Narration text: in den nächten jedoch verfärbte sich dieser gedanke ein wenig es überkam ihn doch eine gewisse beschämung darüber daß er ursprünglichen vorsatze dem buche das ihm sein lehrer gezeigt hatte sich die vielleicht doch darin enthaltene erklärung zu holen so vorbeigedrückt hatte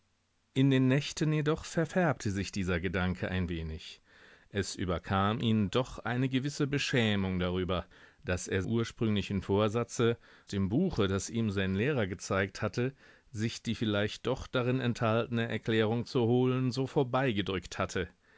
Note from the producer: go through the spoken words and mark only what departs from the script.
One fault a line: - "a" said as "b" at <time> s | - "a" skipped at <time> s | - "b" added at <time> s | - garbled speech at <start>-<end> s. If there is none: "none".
none